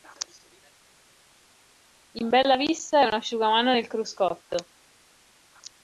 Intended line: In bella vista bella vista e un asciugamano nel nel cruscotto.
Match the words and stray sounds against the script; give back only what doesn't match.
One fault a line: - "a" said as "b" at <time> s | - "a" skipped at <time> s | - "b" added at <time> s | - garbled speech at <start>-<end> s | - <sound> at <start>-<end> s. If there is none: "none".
- "bella vista" skipped at 3.0 s
- "nel" skipped at 3.9 s